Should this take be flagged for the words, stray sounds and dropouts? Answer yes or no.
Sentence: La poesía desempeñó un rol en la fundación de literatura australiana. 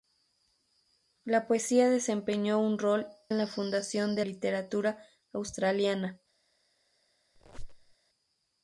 yes